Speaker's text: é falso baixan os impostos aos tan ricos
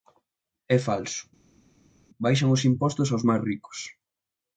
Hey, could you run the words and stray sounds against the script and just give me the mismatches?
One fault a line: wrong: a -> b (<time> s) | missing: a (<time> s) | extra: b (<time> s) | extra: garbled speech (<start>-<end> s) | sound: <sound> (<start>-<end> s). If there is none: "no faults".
wrong: tan -> máis (3.3 s)